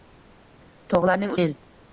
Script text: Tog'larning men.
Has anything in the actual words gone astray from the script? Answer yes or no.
no